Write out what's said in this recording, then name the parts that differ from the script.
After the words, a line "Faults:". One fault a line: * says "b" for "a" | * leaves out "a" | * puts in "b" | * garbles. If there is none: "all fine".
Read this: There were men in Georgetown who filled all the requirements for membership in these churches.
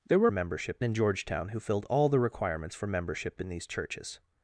There were membership in Georgetown who filled all the requirements for membership in these churches.
Faults:
* says "membership" for "men"